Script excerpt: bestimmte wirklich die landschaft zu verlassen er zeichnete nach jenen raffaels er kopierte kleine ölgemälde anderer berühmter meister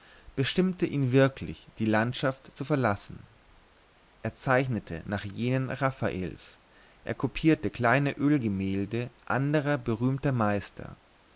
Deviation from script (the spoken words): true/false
true